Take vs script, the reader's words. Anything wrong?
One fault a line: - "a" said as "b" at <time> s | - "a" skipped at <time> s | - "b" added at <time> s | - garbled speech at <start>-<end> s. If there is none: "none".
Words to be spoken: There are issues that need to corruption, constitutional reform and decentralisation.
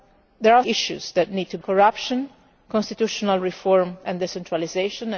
none